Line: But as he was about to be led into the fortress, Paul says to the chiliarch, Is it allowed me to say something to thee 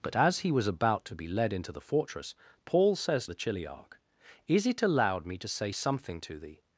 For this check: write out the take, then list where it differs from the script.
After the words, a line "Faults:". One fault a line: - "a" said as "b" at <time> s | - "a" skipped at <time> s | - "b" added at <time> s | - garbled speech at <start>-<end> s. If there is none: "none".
But as he was about to be led into the fortress, Paul says the chiliarch, Is it allowed me to say something to thee
Faults:
- "to" skipped at 3.3 s